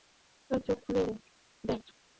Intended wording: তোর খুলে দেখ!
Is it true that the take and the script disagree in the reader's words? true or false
true